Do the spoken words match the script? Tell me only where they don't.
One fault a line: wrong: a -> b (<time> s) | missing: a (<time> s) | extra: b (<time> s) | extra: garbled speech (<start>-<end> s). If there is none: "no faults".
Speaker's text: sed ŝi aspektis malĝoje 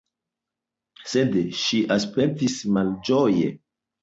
no faults